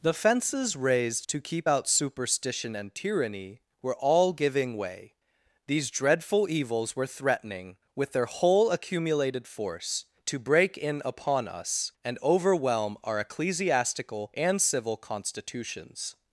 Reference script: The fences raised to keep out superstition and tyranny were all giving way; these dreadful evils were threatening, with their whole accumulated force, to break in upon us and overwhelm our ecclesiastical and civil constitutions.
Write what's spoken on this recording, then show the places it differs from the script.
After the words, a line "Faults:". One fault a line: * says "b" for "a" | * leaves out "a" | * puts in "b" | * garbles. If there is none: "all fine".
The fences raised to keep out superstition and tyranny were all giving way; these dreadful evils were threatening, with their whole accumulated force, to break in upon us and overwhelm our ecclesiastical and civil constitutions.
Faults:
all fine